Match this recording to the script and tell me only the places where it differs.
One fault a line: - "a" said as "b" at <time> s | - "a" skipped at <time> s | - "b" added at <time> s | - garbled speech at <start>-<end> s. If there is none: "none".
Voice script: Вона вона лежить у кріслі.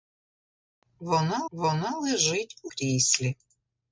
none